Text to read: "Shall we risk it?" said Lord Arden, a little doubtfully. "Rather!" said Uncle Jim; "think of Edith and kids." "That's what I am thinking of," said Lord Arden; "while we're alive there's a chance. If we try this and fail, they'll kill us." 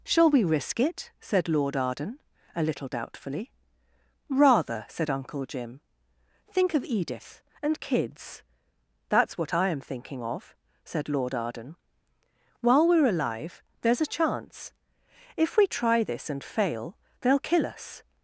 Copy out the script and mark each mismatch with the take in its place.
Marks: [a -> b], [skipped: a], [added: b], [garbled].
"Shall we risk it?" said Lord Arden, a little doubtfully. "Rather!" said Uncle Jim; "think of Edith and kids." "That's what I am thinking of," said Lord Arden; "while we're alive there's a chance. If we try this and fail, they'll kill us."